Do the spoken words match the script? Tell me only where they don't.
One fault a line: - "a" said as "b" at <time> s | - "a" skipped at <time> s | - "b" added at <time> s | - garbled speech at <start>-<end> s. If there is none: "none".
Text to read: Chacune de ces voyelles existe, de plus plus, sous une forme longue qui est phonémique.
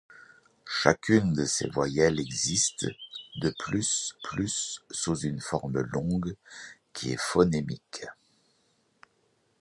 none